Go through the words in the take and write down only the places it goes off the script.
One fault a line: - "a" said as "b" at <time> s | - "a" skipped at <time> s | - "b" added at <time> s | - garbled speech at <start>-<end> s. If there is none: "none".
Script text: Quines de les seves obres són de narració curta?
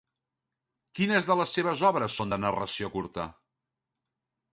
none